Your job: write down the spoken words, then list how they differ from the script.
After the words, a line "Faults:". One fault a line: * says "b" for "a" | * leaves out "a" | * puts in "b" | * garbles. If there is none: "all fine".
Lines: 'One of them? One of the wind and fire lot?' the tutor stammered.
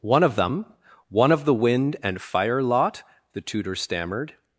'One of them? One of the wind and fire lot?' the tutor stammered.
Faults:
all fine